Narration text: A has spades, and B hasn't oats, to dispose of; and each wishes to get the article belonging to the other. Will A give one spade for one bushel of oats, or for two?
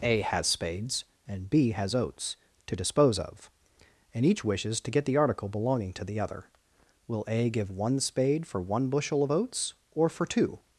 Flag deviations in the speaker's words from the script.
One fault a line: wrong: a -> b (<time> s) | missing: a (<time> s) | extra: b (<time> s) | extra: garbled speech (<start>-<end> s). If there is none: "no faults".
wrong: hasn't -> has (1.7 s)